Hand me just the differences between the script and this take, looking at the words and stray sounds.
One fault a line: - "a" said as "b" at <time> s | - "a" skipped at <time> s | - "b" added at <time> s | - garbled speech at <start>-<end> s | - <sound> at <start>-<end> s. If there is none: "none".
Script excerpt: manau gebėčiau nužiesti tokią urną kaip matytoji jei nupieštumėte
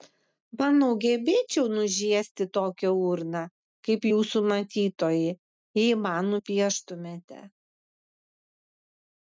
- "jūsų" added at 4.1 s
- "man" added at 6.1 s